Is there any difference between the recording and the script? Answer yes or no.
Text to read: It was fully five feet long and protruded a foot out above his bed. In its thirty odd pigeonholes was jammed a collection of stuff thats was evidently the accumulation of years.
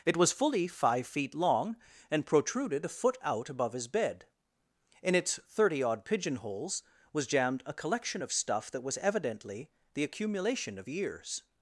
yes